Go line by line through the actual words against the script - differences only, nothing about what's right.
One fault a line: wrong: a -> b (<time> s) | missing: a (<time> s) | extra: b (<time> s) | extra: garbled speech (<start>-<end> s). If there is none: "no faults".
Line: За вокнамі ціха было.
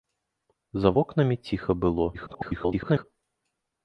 extra: garbled speech (2.1-3.0 s)